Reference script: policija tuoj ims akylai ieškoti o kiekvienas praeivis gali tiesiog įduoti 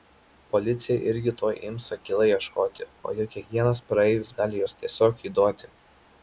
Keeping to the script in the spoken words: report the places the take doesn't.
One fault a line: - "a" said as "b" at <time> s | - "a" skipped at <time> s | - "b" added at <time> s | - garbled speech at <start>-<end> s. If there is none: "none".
- "irgi" added at 1.1 s
- "juk" added at 3.2 s
- "juos" added at 4.6 s